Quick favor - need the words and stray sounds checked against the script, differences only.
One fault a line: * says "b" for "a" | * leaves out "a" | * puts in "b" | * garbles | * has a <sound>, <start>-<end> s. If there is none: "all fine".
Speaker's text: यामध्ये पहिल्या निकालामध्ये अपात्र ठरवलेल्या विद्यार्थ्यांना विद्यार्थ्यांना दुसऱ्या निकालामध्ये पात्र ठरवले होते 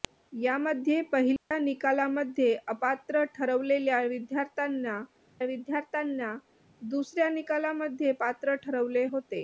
* has a dropout, 1.4-1.5 s